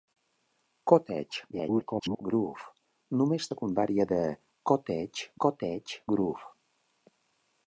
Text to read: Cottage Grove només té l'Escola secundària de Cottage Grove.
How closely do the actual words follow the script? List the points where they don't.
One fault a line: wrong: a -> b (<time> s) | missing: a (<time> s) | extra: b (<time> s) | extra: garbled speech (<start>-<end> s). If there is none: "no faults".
extra: garbled speech (1.5-2.2 s)
missing: té l'Escola (3.5 s)
extra: Cottage (5.4 s)